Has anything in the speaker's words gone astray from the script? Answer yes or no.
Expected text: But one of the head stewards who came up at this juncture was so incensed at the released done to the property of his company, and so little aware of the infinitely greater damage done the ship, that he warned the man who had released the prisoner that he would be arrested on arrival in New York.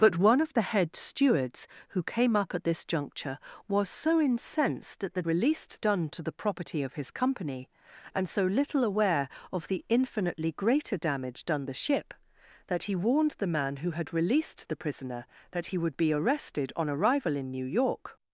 no